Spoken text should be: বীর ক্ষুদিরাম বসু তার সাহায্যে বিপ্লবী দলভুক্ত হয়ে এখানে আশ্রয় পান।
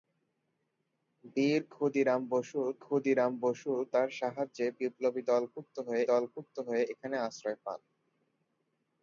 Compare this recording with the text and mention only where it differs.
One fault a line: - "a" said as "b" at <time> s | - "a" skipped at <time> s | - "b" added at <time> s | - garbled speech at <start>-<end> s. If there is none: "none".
- "ক্ষুদিরাম বসু" added at 2.8 s
- "দলভুক্ত হয়ে" added at 6.1 s